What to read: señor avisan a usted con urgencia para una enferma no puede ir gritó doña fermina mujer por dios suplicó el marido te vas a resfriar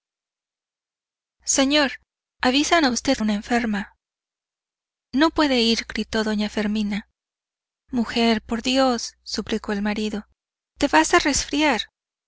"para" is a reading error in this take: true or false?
true